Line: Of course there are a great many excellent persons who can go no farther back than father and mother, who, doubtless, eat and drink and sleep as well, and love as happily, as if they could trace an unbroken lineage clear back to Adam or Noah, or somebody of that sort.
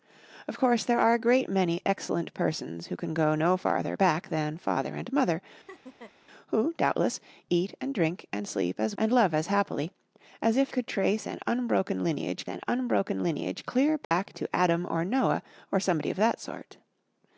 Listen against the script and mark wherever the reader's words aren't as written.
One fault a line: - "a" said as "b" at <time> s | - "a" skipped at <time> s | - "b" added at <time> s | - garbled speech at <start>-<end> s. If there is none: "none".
- "well" skipped at 8.9 s
- "they" skipped at 10.7 s
- "an unbroken lineage" added at 12.5 s